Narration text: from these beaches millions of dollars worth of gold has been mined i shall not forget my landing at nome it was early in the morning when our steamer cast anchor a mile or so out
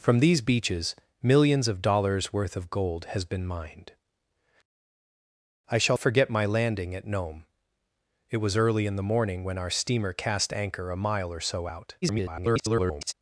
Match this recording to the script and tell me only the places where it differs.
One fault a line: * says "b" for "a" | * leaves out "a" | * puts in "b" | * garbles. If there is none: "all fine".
* leaves out "not"
* garbles